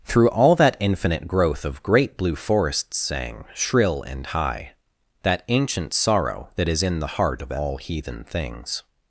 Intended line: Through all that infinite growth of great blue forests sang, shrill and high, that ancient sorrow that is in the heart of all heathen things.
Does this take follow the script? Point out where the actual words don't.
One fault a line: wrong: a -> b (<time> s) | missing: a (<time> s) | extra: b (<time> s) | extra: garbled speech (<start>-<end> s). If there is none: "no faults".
no faults